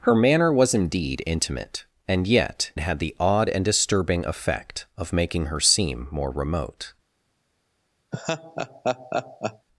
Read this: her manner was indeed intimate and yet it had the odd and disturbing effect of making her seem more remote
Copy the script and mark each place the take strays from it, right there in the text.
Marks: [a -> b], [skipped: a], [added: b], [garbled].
her manner was indeed intimate and yet [skipped: it] had the odd and disturbing effect of making her seem more remote